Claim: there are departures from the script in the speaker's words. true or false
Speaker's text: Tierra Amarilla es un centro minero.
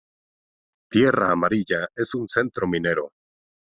false